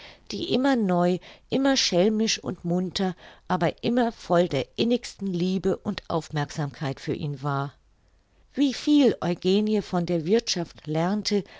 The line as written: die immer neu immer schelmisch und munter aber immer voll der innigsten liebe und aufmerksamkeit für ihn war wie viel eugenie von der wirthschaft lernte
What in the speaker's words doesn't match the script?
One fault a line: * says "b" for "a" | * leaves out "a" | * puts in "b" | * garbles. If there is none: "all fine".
all fine